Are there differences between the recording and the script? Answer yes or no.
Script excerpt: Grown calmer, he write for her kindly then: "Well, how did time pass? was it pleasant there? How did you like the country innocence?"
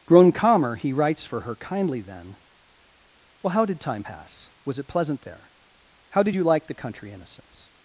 yes